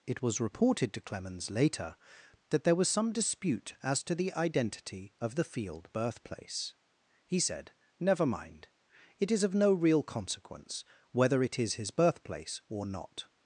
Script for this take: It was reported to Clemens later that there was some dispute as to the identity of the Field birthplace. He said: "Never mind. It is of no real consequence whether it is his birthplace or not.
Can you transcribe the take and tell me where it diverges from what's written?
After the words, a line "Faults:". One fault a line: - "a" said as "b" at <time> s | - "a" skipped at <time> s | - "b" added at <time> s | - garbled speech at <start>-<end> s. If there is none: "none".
It was reported to Clemens later that there was some dispute as to the identity of the Field birthplace. He said: "Never mind. It is of no real consequence whether it is his birthplace or not.
Faults:
none